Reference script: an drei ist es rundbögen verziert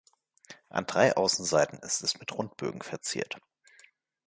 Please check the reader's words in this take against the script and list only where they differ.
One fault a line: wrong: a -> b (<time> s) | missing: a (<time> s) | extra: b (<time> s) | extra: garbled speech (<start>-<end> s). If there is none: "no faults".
extra: außenseiten (1.1 s)
extra: mit (2.2 s)